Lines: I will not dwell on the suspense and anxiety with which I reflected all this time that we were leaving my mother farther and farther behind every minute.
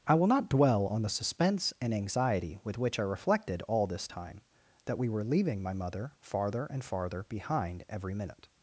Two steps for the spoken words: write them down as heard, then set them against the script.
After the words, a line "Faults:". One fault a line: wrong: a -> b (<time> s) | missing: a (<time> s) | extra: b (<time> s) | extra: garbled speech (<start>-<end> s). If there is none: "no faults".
I will not dwell on the suspense and anxiety with which I reflected all this time that we were leaving my mother farther and farther behind every minute.
Faults:
no faults